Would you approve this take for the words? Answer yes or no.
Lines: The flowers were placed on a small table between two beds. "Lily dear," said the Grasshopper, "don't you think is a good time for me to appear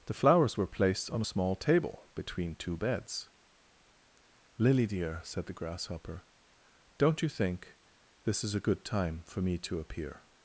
no